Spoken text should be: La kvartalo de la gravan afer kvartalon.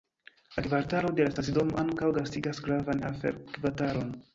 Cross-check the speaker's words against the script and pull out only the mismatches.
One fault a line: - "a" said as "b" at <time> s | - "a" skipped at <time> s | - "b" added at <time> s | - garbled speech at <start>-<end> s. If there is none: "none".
- "stacidomo ankaŭ gastigas" added at 1.4 s